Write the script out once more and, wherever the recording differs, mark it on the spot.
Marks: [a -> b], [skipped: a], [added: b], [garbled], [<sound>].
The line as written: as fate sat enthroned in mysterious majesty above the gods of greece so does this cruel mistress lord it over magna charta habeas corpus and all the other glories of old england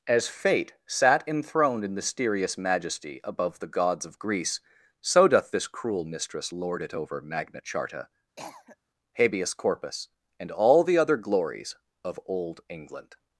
as fate sat enthroned in mysterious majesty above the gods of greece so [does -> doth] this cruel mistress lord it over magna charta [cough] habeas corpus and all the other glories of old england